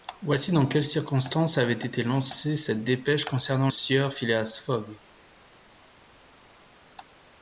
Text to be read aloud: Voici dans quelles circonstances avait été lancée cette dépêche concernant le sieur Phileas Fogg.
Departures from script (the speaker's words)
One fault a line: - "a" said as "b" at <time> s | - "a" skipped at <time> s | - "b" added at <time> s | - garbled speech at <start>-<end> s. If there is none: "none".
- "le" skipped at 3.7 s